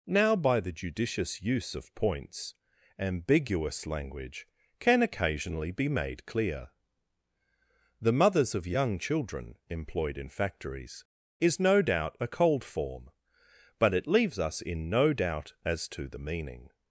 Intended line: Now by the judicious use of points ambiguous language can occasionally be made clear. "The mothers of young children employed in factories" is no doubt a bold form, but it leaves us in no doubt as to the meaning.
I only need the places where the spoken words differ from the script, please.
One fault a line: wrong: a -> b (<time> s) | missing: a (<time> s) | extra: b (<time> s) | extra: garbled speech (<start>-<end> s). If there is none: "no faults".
wrong: bold -> cold (12.3 s)